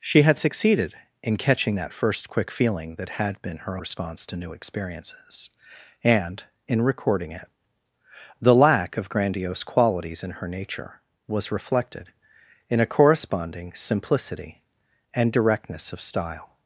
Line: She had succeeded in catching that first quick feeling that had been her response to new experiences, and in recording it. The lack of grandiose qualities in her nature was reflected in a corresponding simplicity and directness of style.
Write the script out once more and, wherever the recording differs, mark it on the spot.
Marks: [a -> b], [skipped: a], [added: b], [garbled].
She had succeeded in catching that first quick feeling that had been her response to new experiences, and in recording it. The lack of grandiose qualities in her nature was reflected in a corresponding simplicity and directness of style.